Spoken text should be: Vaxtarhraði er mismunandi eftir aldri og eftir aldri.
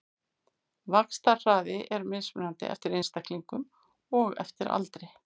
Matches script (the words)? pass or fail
fail